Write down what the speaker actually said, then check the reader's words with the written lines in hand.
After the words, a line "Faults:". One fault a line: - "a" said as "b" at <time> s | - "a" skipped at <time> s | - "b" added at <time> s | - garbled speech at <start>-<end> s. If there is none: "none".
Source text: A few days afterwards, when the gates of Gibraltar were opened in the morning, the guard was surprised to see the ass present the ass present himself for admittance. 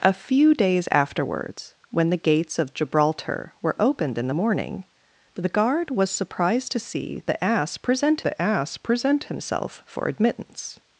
A few days afterwards, when the gates of Gibraltar were opened in the morning, the guard was surprised to see the ass present the ass present himself for admittance.
Faults:
none